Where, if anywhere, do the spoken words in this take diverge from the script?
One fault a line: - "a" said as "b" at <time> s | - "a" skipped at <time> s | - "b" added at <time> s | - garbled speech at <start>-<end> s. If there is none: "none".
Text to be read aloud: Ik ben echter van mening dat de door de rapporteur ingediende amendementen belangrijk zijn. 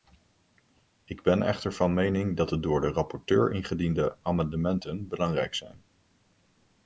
none